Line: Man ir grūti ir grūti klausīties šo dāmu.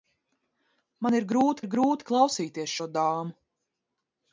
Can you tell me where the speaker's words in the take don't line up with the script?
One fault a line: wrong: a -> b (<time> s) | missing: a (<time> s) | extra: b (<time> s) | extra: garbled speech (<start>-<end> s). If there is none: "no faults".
no faults